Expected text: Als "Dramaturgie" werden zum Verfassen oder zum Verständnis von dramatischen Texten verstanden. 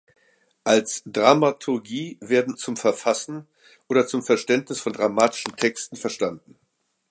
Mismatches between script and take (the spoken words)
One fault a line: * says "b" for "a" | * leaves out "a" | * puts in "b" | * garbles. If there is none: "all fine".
all fine